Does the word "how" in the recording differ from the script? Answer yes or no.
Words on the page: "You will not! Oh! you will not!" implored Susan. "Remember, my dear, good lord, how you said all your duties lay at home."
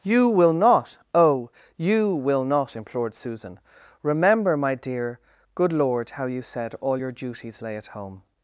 no